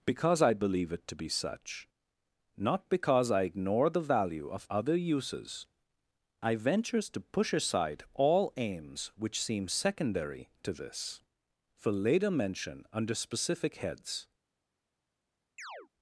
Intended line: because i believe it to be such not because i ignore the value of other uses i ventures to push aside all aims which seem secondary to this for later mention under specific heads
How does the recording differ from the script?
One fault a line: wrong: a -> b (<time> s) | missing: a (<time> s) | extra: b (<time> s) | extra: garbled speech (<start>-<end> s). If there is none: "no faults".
no faults